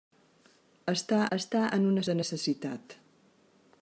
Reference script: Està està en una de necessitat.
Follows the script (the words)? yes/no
yes